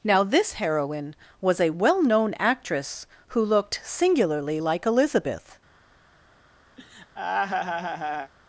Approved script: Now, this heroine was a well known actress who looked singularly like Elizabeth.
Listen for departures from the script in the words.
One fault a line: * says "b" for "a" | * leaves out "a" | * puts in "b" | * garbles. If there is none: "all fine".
all fine